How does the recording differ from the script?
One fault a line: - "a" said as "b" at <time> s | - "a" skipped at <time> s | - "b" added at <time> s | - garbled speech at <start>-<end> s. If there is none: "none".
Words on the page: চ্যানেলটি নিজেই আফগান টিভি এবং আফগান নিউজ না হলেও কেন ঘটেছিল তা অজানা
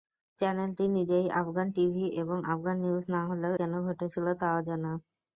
none